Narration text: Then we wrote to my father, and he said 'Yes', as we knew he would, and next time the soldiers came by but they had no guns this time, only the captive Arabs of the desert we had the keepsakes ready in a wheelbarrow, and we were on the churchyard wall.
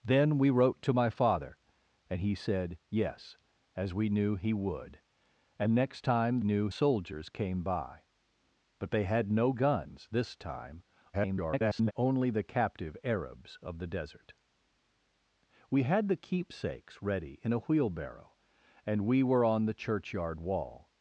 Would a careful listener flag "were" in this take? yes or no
no